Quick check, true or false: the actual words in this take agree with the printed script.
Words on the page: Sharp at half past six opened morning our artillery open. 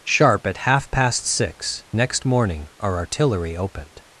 false